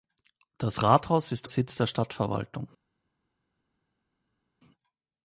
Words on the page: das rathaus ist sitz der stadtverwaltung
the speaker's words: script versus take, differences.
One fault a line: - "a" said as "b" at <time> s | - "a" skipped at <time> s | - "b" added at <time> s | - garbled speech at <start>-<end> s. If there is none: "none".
none